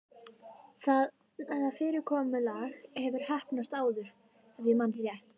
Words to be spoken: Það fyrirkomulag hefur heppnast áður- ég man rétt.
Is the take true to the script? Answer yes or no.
no